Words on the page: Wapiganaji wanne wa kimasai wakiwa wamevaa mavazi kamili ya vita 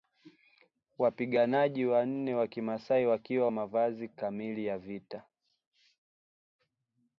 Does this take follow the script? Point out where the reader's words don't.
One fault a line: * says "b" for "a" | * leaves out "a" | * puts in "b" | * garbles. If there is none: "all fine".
* leaves out "wamevaa"